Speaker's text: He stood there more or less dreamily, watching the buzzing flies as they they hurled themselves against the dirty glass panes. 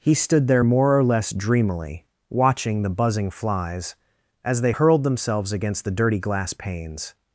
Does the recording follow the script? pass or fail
fail